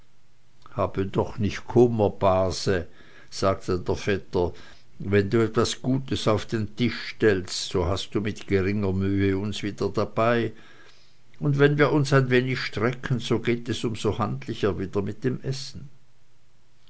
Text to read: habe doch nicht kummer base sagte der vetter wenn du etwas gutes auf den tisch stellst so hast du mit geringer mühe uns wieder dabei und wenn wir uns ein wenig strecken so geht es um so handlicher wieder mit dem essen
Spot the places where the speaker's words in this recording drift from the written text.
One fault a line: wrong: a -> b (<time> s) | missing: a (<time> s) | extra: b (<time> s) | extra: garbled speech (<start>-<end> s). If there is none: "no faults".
no faults